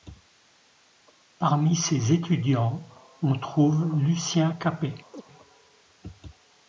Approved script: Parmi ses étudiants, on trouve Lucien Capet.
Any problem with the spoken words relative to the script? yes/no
no